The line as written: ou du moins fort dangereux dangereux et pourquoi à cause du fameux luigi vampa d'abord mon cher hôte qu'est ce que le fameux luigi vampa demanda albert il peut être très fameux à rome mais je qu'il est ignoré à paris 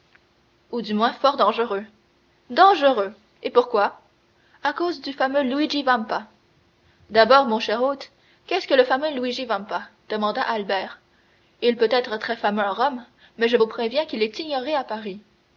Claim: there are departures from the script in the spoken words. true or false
true